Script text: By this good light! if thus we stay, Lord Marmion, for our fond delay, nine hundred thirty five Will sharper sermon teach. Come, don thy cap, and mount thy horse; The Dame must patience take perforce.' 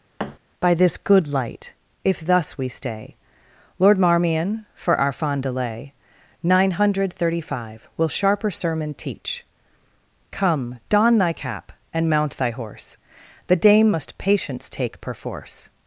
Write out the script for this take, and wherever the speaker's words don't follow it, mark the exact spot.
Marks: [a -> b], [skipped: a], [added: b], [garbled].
By this good light! if thus we stay, Lord Marmion, for our fond delay, nine hundred thirty five Will sharper sermon teach. Come, don thy cap, and mount thy horse; The Dame must patience take perforce.'